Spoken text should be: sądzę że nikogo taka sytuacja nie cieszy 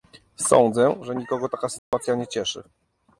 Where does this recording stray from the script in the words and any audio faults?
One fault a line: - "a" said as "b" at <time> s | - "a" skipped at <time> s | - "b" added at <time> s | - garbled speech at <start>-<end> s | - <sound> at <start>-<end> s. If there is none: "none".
- dropout at 1.8-1.9 s